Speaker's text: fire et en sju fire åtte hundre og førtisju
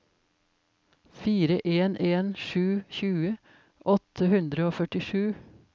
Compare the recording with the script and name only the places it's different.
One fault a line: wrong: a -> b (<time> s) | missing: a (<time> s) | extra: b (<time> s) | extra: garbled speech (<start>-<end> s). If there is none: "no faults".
wrong: et -> en (1.6 s)
wrong: fire -> tjue (3.0 s)